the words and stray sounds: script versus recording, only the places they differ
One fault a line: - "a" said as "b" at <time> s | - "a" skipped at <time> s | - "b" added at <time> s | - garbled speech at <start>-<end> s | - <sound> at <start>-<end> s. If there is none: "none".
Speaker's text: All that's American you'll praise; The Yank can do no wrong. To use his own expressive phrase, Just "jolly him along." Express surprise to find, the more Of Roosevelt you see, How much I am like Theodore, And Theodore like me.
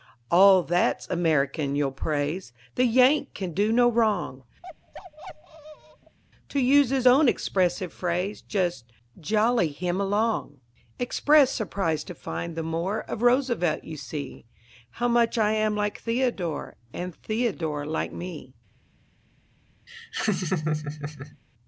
- bark at 4.6-6.2 s
- laugh at 19.9-21.4 s